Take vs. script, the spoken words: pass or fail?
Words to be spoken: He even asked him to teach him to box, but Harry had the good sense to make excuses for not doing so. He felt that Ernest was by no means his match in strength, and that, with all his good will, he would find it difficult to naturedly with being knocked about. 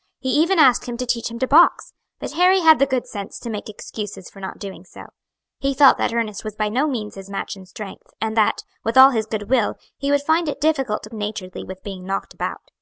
pass